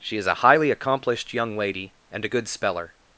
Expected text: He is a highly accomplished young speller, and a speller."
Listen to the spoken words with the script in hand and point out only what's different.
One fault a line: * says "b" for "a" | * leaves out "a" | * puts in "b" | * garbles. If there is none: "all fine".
* says "She" for "He"
* says "lady" for "speller"
* puts in "good"